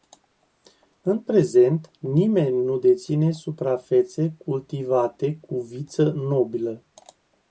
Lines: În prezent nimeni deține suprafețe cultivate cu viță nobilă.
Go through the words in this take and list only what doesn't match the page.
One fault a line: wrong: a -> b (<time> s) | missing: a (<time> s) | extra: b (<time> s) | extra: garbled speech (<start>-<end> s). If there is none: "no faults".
extra: nu (2.6 s)